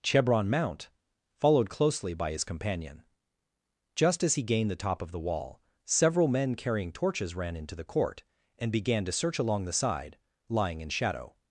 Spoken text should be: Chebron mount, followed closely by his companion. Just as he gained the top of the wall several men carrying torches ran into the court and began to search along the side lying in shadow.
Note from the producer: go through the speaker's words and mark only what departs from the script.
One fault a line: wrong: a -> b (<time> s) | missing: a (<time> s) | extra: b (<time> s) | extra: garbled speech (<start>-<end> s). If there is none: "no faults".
no faults